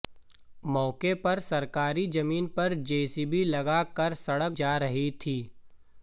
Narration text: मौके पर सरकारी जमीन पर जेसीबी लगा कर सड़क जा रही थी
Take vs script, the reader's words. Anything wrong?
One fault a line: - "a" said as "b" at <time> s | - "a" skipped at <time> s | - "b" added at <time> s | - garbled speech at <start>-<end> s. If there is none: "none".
none